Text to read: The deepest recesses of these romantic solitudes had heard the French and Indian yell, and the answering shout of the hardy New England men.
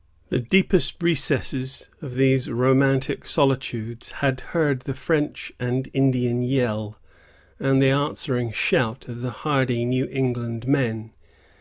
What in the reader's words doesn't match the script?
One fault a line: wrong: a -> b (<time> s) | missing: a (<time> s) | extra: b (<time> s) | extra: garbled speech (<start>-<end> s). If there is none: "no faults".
no faults